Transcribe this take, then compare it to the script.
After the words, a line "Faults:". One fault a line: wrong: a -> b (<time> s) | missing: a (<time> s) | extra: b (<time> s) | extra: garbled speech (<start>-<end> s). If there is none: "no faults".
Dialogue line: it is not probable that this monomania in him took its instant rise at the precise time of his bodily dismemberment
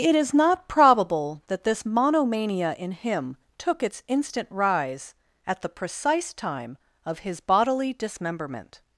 it is not probable that this monomania in him took its instant rise at the precise time of his bodily dismemberment
Faults:
no faults